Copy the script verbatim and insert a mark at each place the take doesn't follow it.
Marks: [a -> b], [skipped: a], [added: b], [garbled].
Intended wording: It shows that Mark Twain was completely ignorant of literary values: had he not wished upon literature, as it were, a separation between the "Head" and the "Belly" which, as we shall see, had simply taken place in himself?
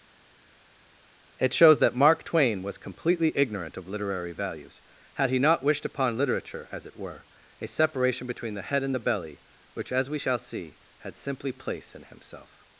It shows that Mark Twain was completely ignorant of literary values: had he not wished upon literature, as it were, a separation between the "Head" and the "Belly" which, as we shall see, had simply [skipped: taken] place in himself?